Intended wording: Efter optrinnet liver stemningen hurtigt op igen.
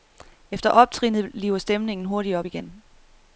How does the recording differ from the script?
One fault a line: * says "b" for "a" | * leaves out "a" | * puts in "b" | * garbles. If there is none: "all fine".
all fine